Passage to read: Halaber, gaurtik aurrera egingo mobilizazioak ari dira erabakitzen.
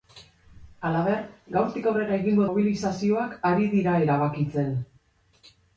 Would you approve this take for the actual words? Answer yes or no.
yes